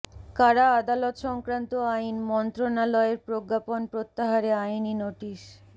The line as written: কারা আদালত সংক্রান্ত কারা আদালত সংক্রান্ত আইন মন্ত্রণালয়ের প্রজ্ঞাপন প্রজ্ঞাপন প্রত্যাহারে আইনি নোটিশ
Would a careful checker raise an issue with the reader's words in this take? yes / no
yes